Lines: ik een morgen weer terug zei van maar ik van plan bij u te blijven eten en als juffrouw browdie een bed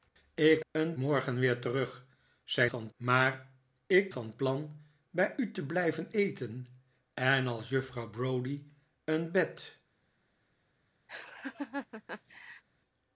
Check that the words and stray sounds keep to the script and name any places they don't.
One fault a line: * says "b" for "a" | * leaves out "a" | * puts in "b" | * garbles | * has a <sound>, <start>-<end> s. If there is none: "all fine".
* has a laugh, 11.1-12.6 s